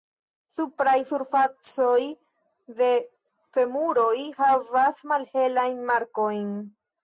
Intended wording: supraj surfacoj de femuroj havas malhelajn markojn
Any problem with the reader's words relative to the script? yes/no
no